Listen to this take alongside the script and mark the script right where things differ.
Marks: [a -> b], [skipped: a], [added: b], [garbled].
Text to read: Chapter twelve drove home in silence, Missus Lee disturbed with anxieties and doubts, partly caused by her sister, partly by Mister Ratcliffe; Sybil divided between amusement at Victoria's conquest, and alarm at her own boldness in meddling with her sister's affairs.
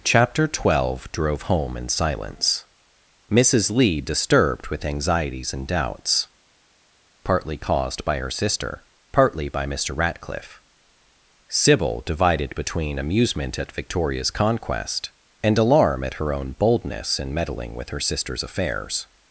Chapter twelve drove home in silence, Missus Lee disturbed with anxieties and doubts, partly caused by her sister, partly by Mister Ratcliffe; Sybil divided between amusement at Victoria's conquest, and alarm at her own boldness in meddling with her sister's affairs.